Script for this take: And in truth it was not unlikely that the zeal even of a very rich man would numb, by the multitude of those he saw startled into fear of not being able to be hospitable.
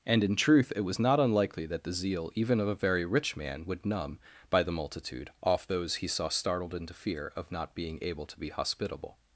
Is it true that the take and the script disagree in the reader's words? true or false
true